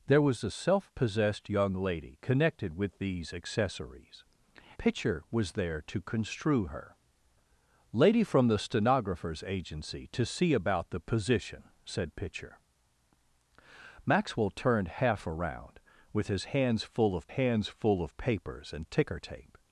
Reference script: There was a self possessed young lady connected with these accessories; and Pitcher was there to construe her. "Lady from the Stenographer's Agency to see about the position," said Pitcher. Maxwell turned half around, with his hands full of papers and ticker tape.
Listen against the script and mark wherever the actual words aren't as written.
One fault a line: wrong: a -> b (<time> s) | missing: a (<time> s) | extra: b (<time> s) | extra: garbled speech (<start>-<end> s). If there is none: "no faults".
missing: and (4.2 s)
extra: hands full of (17.3 s)